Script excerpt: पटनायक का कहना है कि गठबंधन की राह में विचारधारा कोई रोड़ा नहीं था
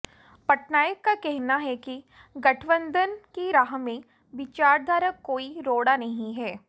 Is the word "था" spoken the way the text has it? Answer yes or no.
no